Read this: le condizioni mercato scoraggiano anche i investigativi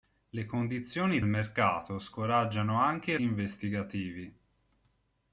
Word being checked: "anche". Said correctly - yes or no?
yes